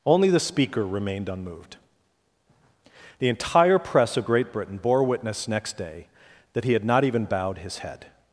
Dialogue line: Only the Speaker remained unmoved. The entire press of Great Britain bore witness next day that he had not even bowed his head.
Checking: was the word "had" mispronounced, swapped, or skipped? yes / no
no